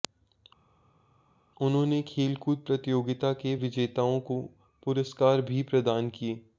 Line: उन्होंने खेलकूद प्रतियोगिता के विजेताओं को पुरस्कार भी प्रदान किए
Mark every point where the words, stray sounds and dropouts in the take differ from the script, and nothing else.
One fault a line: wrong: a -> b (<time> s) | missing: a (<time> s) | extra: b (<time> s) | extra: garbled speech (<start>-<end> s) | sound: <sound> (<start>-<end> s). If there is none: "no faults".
no faults